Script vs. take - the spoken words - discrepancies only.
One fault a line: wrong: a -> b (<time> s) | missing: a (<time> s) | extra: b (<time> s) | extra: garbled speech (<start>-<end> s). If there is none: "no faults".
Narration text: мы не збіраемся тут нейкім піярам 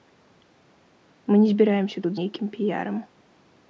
no faults